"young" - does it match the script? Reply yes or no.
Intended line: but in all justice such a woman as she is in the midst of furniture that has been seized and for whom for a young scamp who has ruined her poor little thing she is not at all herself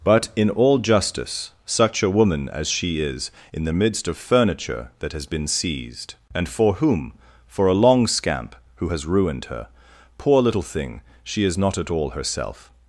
no